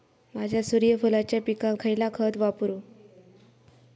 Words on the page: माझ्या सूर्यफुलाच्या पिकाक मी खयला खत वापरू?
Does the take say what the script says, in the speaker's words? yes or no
no